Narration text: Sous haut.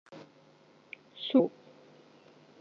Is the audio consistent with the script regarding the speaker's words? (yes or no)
yes